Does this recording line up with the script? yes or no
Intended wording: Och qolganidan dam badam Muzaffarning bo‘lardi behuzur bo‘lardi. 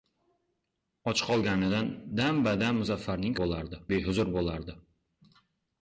yes